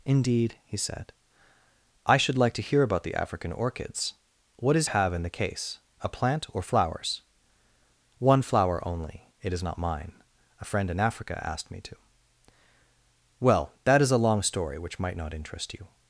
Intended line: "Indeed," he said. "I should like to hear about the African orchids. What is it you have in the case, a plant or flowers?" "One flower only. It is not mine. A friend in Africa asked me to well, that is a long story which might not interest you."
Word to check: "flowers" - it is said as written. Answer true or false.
true